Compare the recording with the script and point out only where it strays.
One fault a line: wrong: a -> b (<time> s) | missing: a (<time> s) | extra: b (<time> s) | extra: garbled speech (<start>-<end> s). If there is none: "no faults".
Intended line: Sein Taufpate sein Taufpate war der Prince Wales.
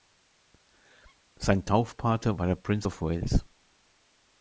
missing: sein Taufpate (2.4 s)
extra: of (2.9 s)